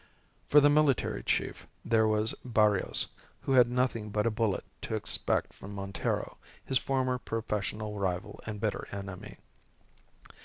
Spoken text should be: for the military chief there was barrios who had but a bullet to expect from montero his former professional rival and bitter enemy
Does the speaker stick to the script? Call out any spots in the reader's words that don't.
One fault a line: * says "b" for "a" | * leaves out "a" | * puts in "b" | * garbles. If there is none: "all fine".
* puts in "nothing"